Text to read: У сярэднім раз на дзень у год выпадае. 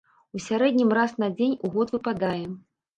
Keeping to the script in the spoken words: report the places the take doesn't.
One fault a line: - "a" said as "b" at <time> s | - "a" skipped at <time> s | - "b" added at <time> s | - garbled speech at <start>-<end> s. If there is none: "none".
none